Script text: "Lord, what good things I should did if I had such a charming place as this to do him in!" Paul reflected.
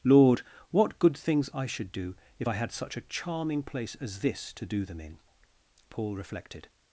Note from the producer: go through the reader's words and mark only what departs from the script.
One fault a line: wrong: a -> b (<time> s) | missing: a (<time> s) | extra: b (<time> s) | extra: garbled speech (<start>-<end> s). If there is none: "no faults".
wrong: did -> do (1.9 s)
wrong: him -> them (4.8 s)